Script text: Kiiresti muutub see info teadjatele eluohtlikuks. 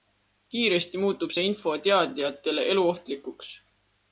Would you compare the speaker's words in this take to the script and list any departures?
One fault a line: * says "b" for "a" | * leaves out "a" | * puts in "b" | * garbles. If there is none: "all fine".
all fine